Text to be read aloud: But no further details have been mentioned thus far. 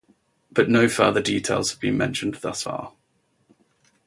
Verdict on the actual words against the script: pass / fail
pass